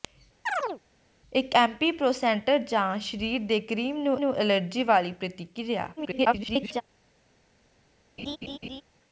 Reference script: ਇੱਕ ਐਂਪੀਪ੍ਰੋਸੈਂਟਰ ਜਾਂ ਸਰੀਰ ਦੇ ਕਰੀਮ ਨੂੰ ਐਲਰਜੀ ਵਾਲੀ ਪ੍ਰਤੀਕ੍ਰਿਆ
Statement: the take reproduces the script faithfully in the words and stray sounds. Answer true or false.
false